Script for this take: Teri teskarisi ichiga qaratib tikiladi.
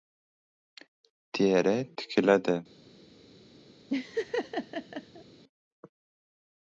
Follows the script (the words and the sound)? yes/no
no